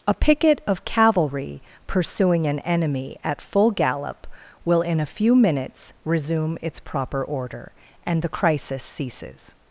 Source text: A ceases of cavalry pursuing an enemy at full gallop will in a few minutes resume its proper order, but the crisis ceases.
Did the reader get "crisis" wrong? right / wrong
right